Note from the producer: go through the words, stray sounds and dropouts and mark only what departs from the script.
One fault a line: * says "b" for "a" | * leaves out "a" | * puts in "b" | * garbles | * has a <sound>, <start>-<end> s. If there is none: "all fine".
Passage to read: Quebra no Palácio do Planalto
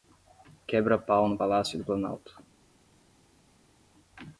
* puts in "pau"